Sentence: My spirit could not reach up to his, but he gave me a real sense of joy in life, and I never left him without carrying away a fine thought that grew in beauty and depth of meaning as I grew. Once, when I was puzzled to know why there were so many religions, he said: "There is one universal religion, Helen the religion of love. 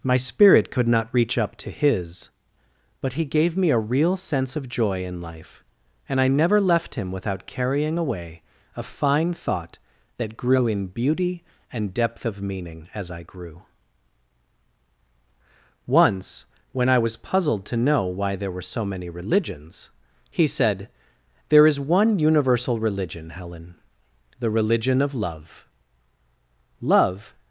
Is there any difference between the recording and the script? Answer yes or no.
yes